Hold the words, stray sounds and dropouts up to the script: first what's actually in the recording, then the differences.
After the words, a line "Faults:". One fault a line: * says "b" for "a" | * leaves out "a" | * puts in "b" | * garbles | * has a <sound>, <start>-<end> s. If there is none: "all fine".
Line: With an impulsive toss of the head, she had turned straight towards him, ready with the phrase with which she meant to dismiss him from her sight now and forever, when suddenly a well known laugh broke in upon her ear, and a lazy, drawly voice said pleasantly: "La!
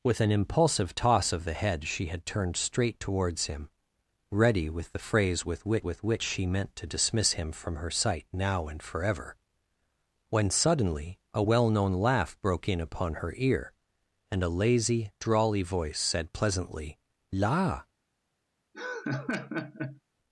With an impulsive toss of the head, she had turned straight towards him, ready with the phrase with which with which she meant to dismiss him from her sight now and forever, when suddenly a well known laugh broke in upon her ear, and a lazy, drawly voice said pleasantly: "La!
Faults:
* puts in "with which"
* has a laugh, 18.7-20.0 s